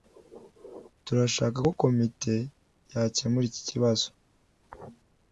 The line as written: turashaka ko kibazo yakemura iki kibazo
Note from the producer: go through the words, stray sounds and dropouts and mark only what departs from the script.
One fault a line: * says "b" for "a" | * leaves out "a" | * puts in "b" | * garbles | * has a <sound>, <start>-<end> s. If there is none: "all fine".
* says "komite" for "kibazo"